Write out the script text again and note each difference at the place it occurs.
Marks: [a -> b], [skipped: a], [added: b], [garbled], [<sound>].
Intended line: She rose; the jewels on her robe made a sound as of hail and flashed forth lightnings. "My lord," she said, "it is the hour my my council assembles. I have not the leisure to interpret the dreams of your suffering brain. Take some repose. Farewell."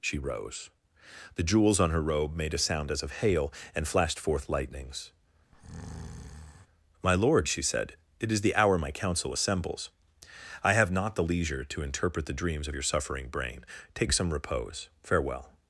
She rose; the jewels on her robe made a sound as of hail and flashed forth lightnings. [breath] "My lord," she said, "it is the hour my [skipped: my] council assembles. I have not the leisure to interpret the dreams of your suffering brain. Take some repose. Farewell."